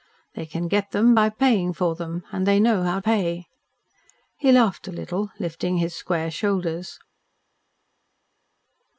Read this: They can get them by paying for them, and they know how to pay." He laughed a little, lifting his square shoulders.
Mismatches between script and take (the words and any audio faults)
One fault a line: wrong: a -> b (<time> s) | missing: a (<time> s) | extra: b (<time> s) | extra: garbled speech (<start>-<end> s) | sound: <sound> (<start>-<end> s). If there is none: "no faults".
missing: to (3.0 s)